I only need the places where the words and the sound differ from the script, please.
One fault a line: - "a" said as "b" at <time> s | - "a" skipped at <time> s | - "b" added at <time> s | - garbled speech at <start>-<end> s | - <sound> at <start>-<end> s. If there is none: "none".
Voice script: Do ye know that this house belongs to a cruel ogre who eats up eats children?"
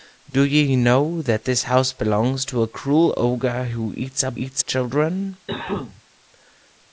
- cough at 5.5-6.0 s